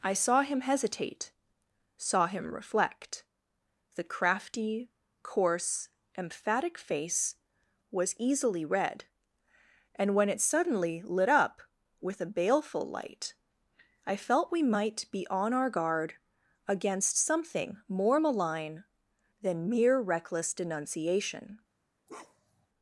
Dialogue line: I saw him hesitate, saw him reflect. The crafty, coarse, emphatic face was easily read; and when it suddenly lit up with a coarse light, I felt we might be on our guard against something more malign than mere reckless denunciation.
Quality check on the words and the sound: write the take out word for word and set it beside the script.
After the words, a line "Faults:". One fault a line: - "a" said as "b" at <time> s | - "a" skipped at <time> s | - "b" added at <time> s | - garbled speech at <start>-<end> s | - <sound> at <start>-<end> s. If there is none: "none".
I saw him hesitate, saw him reflect. The crafty, coarse, emphatic face was easily read; and when it suddenly lit up with a baleful light, I felt we might be on our guard against something more malign than mere reckless denunciation.
Faults:
- "coarse" said as "baleful" at 12.2 s
- bark at 22.1-22.7 s